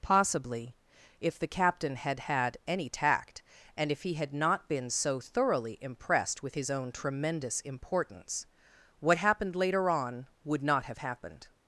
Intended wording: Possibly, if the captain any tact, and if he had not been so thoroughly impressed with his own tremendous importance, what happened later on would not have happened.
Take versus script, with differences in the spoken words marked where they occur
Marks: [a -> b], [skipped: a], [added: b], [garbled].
Possibly, if the captain [added: had had] any tact, and if he had not been so thoroughly impressed with his own tremendous importance, what happened later on would not have happened.